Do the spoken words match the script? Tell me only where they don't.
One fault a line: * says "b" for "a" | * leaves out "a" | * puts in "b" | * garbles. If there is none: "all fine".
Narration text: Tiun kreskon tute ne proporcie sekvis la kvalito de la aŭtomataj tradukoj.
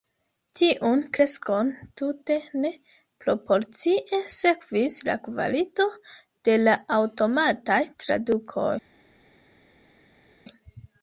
all fine